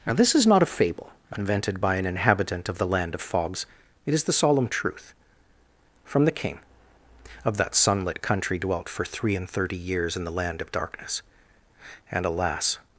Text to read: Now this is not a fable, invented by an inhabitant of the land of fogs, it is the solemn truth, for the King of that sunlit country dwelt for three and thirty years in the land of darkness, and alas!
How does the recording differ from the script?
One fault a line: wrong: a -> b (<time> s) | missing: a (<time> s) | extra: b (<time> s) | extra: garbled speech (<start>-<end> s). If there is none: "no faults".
wrong: for -> from (6.0 s)